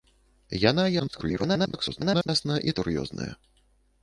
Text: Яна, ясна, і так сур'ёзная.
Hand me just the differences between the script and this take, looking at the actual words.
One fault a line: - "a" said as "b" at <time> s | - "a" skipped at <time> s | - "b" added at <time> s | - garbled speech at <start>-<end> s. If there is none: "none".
- garbled speech at 1.0-2.3 s
- "так" skipped at 2.8 s